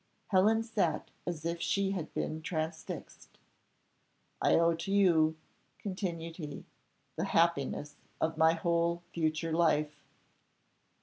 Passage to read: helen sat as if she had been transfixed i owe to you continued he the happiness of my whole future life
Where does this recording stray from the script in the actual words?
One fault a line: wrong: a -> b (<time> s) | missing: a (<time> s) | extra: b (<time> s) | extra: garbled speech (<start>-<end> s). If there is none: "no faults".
no faults